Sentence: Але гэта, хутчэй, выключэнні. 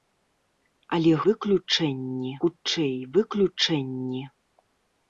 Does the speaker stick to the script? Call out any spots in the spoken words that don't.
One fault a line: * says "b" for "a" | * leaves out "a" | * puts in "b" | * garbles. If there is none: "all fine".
* says "выключэнні" for "гэта"